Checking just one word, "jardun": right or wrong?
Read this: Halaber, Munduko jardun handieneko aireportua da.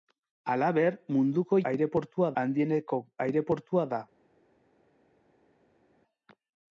wrong